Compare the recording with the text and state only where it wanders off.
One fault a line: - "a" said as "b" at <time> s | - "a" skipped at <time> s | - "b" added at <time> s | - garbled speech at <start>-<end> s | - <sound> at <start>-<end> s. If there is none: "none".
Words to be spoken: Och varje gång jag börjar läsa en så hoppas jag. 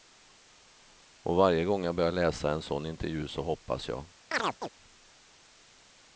- "sån intervju" added at 2.6 s
- chirp at 4.3-4.7 s